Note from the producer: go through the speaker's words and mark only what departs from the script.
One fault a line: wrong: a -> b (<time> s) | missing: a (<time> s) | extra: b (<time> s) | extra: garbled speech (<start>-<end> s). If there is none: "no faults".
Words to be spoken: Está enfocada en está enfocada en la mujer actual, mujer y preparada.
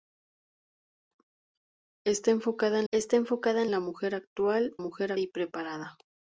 no faults